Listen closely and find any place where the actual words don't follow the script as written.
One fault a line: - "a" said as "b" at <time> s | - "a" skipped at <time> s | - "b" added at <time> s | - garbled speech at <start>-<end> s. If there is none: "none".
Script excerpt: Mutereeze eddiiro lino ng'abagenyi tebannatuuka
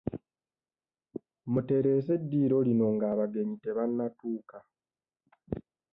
none